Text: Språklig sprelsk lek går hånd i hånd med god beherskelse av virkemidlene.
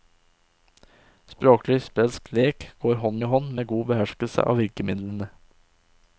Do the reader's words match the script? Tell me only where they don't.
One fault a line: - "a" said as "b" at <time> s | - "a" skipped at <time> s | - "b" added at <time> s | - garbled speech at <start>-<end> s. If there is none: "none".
none